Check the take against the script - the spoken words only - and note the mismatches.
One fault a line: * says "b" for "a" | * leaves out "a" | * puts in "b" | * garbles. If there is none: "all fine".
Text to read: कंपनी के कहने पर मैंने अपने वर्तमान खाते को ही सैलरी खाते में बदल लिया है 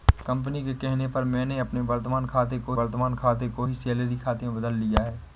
* puts in "वर्तमान खाते को"